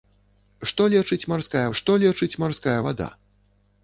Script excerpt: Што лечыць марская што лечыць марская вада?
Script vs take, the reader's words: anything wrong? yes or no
no